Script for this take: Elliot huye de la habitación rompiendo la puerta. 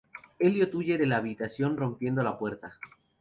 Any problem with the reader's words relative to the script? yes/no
no